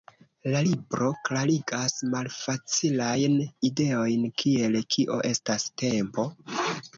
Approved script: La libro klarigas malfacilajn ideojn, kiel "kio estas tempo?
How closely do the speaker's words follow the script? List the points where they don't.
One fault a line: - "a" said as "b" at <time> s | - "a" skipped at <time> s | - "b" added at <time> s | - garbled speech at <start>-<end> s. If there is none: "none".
none